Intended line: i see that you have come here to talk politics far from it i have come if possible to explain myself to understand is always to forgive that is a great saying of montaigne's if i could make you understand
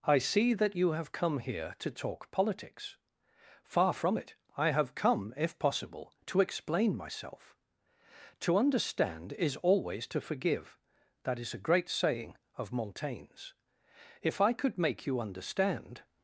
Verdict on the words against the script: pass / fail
pass